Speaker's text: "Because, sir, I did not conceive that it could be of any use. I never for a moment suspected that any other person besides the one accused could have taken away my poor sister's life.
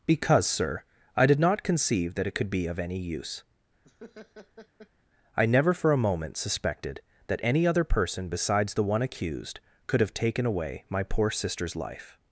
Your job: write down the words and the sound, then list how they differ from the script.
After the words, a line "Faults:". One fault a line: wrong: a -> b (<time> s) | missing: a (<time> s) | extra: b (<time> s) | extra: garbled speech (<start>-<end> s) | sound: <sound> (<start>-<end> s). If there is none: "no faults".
"Because, sir, I did not conceive that it could be of any use. I never for a moment suspected that any other person besides the one accused could have taken away my poor sister's life.
Faults:
sound: laugh (3.8-4.9 s)